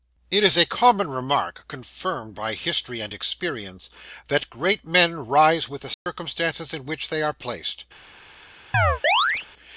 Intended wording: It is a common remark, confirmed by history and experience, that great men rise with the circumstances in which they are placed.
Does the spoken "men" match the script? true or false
true